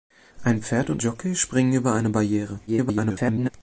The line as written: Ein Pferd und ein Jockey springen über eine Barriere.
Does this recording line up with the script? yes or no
no